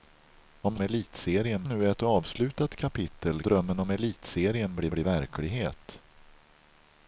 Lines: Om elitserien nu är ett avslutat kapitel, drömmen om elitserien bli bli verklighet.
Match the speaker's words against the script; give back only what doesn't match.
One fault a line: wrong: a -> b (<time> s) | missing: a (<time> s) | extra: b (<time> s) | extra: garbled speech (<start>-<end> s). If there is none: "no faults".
no faults